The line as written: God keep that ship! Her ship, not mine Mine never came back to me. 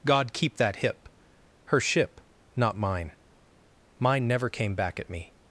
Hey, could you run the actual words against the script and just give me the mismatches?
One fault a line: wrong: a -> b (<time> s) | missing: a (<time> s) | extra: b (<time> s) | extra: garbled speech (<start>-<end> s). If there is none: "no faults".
wrong: ship -> hip (0.8 s)
wrong: to -> at (5.0 s)